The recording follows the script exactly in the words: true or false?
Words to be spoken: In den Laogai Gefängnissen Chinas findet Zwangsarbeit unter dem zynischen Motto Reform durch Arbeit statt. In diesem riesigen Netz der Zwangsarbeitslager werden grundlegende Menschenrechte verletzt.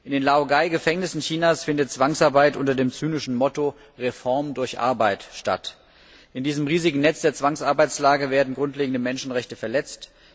true